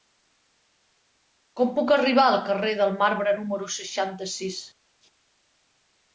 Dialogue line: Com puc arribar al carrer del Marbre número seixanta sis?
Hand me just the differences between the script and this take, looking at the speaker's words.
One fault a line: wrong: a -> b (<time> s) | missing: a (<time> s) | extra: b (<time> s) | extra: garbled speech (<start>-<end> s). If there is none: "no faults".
no faults